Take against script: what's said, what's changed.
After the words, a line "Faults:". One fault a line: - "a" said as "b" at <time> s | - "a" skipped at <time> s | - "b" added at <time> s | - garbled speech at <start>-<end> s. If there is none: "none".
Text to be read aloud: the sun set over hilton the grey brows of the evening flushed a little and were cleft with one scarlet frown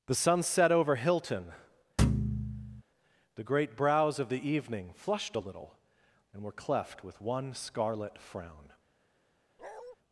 the sun set over hilton the great brows of the evening flushed a little and were cleft with one scarlet frown
Faults:
- "grey" said as "great" at 3.4 s